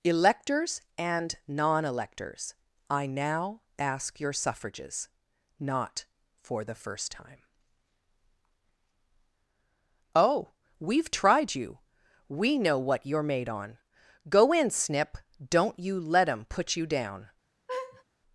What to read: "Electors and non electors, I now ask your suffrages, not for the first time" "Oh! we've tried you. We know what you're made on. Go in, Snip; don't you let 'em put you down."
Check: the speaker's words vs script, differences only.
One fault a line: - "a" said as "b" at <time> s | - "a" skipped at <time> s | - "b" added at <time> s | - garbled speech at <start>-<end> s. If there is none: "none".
none